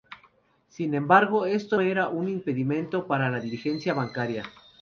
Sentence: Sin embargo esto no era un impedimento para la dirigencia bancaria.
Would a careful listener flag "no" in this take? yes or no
yes